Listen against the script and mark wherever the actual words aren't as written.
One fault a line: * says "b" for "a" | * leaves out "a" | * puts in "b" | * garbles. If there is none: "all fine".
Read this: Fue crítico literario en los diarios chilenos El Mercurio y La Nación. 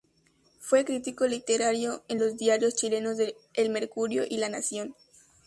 all fine